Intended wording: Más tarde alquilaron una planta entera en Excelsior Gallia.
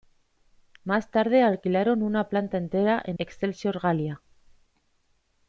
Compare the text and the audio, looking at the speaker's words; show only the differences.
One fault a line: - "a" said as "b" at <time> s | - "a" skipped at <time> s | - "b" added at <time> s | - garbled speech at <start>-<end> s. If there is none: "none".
none